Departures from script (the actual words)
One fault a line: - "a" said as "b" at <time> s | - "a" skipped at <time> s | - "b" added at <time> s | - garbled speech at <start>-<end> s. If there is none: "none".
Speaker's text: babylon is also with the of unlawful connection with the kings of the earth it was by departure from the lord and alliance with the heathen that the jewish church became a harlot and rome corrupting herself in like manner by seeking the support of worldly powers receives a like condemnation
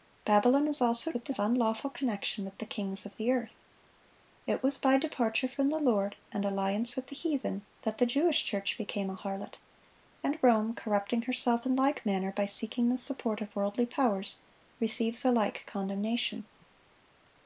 none